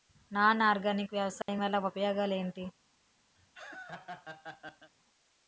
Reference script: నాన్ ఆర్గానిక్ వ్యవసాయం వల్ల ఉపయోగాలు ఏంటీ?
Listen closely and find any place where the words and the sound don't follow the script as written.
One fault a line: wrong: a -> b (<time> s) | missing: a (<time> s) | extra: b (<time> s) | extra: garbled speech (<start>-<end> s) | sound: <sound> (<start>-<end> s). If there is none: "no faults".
sound: dropout (1.4-1.5 s)
sound: laugh (3.4-4.9 s)